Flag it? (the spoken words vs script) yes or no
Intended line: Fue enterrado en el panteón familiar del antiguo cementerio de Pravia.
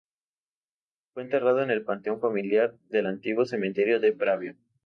no